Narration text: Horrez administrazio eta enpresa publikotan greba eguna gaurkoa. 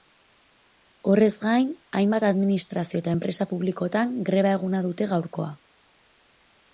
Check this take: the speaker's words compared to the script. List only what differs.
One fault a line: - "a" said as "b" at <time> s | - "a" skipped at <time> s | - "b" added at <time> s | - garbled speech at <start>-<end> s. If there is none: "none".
- "gain hainbat" added at 1.4 s
- "dute" added at 4.9 s